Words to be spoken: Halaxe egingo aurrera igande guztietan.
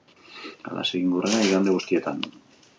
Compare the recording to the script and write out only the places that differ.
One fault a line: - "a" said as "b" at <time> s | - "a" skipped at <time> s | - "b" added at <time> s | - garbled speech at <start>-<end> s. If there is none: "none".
none